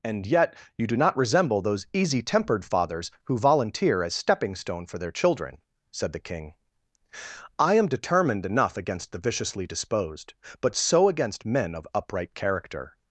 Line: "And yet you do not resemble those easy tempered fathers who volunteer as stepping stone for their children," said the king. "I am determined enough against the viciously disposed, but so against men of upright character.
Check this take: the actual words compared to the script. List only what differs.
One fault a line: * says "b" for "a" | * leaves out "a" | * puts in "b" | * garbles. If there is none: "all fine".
all fine